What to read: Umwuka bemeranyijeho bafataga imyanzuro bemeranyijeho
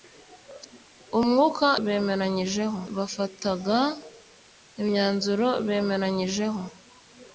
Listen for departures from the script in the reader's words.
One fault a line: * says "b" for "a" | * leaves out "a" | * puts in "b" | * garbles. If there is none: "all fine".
all fine